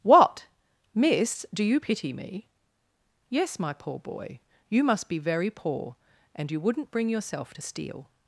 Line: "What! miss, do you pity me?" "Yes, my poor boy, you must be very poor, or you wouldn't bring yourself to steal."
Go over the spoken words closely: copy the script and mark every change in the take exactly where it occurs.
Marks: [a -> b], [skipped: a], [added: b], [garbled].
"What! miss, do you pity me?" "Yes, my poor boy, you must be very poor, [or -> and] you wouldn't bring yourself to steal."